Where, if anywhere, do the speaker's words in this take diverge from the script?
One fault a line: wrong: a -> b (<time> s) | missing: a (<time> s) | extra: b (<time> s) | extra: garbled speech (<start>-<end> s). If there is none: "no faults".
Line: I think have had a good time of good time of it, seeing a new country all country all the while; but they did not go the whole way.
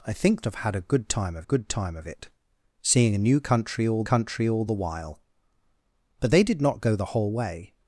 no faults